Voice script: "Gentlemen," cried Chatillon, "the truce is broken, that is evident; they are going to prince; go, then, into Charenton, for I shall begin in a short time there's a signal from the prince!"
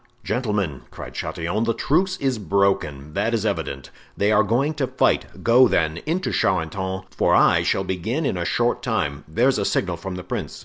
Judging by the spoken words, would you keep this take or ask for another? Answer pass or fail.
fail